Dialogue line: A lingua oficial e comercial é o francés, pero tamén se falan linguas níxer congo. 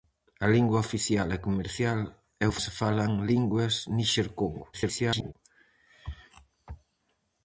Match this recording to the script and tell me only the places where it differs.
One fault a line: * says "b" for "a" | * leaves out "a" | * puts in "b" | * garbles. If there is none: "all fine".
* leaves out "francés pero tamén"
* garbles